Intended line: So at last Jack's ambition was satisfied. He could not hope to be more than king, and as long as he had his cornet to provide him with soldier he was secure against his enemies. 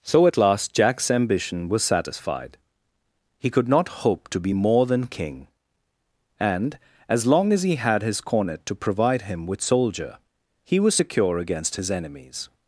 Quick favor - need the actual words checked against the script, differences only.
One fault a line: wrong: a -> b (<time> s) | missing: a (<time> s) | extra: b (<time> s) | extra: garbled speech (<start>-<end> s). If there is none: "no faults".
no faults